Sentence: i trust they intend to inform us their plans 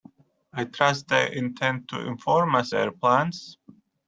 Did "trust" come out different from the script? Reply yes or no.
no